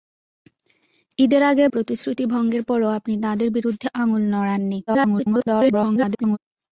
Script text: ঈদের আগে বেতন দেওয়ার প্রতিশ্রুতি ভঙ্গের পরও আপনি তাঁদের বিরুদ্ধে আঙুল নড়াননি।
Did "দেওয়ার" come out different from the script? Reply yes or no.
yes